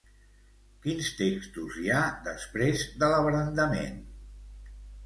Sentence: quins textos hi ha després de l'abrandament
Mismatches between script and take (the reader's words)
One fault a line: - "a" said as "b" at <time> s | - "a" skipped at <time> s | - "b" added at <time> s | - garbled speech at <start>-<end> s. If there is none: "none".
none